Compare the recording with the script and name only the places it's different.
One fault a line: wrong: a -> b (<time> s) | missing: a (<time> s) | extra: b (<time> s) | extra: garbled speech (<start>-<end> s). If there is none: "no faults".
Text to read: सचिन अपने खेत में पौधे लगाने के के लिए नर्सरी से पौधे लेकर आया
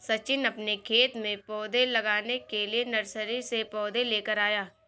missing: के (2.6 s)